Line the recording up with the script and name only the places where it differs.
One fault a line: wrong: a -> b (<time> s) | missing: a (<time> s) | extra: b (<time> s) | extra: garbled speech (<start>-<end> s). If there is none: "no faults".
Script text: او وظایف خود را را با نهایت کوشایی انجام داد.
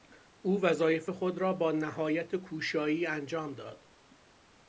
missing: را (1.5 s)